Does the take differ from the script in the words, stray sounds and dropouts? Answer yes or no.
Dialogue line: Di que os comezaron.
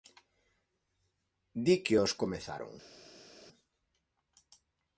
no